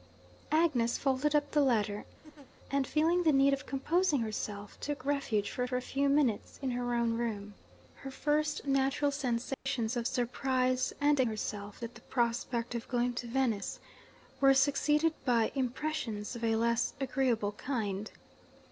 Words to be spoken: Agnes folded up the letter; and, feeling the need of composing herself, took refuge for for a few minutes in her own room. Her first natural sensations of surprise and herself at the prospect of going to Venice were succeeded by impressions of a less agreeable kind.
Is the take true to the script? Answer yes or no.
yes